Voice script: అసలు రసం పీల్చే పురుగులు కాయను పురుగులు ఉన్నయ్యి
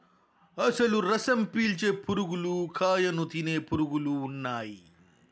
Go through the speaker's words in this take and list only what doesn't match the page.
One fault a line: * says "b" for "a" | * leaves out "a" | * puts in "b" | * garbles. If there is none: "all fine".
* puts in "తినే"